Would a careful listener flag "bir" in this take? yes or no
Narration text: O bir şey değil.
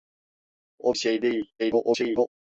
yes